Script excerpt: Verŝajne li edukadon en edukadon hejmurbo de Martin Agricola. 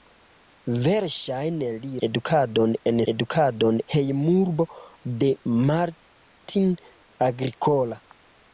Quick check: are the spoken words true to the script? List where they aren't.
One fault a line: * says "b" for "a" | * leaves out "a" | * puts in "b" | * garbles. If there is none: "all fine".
all fine